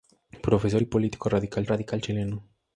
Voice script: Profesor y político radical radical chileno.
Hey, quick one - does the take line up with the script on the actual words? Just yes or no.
yes